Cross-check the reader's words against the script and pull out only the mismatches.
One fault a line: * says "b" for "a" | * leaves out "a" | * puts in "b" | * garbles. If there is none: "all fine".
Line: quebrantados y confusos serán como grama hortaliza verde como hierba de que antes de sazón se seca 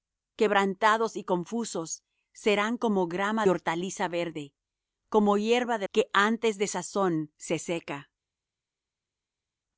all fine